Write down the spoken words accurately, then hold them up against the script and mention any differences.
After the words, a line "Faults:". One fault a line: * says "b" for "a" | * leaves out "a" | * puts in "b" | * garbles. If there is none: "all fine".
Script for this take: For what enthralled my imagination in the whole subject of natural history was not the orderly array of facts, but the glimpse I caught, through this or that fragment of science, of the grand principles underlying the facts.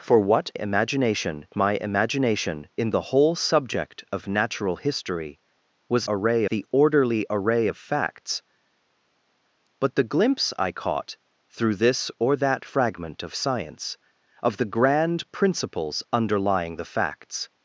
For what imagination my imagination in the whole subject of natural history was array the orderly array of facts, but the glimpse I caught, through this or that fragment of science, of the grand principles underlying the facts.
Faults:
* says "imagination" for "enthralled"
* says "array" for "not"